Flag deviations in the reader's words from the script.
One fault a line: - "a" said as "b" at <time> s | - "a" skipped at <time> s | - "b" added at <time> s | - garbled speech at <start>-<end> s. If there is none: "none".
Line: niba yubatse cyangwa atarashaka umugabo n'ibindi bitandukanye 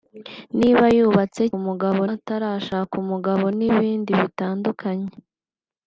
- "cyangwa" said as "umugabo" at 1.6 s